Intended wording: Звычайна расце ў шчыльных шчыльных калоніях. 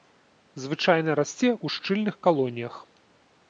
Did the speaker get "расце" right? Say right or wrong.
right